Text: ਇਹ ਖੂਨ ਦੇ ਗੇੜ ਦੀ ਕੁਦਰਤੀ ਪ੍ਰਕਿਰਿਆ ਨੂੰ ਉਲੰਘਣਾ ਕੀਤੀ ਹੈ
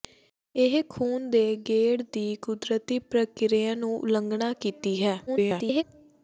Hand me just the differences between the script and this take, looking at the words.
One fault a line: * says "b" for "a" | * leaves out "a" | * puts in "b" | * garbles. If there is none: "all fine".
* garbles